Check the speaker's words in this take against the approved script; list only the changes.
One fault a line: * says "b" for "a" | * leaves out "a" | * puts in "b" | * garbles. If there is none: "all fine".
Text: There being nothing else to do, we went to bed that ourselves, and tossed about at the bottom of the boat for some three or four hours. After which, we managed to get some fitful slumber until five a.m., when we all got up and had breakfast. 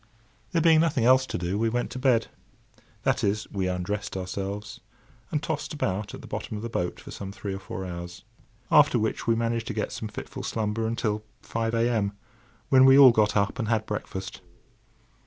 * puts in "is we undressed"